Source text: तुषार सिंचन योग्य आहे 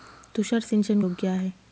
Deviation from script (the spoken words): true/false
false